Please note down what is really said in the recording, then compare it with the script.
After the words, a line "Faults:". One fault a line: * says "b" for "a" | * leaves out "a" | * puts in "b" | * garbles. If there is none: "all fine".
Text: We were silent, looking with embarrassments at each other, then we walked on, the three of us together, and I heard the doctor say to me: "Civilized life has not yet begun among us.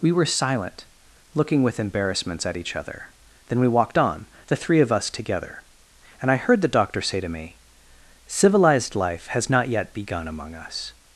We were silent, looking with embarrassments at each other, then we walked on, the three of us together, and I heard the doctor say to me: "Civilized life has not yet begun among us.
Faults:
all fine